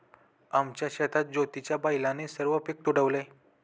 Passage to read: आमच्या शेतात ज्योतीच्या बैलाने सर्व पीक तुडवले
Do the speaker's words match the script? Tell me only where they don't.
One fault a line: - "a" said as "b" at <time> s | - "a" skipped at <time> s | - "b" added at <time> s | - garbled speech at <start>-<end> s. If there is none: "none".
none